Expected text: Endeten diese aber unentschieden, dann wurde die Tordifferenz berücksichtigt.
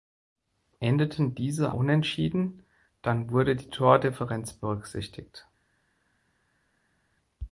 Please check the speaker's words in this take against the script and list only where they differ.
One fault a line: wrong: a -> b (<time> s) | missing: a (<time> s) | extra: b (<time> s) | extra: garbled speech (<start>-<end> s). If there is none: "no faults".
missing: aber (1.7 s)